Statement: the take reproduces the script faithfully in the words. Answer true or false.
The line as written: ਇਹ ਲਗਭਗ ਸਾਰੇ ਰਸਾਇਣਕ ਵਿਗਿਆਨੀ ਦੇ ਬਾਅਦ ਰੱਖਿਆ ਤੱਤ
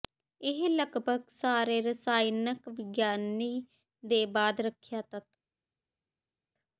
true